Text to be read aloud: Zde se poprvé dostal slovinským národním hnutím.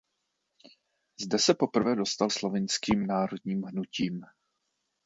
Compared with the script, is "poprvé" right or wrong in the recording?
right